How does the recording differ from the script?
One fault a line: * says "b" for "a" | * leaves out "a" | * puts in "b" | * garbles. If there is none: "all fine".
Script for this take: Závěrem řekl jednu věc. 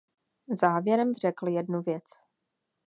all fine